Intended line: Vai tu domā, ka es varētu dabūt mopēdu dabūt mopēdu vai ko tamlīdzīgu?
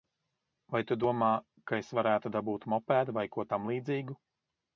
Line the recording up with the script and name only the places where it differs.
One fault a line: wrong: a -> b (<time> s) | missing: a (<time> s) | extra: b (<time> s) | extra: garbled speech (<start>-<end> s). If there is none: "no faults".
missing: dabūt mopēdu (3.1 s)